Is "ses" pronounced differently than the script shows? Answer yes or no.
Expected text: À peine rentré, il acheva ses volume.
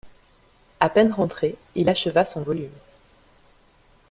yes